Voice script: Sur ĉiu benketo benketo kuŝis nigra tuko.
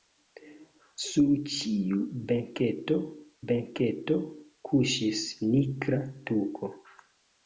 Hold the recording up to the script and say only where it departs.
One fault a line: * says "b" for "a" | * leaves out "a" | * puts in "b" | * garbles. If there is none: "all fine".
all fine